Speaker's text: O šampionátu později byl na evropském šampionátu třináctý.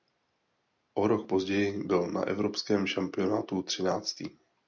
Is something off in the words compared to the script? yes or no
yes